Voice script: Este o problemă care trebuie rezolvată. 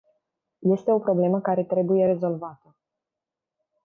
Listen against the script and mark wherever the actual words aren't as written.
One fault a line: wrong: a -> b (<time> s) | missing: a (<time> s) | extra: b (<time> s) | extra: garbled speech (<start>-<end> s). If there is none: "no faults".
no faults